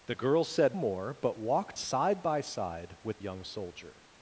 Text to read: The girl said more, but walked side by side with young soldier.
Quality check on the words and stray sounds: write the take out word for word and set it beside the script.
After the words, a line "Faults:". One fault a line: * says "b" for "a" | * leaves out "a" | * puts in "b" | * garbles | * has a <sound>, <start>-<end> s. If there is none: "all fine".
The girl said more, but walked side by side with young soldier.
Faults:
all fine